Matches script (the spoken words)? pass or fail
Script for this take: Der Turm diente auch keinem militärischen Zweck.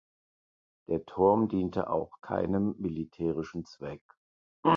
pass